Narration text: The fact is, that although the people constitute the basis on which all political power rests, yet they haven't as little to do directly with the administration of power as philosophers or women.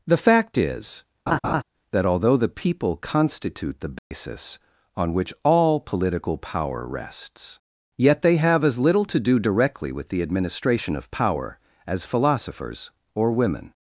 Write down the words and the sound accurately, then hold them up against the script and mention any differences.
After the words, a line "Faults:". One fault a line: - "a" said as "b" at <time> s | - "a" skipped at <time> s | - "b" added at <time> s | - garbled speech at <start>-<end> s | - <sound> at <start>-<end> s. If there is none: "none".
The fact is, that although the people constitute the basis on which all political power rests, yet they have as little to do directly with the administration of power as philosophers or women.
Faults:
- laugh at 1.3-1.6 s
- dropout at 4.0-4.1 s
- "haven't" said as "have" at 8.4 s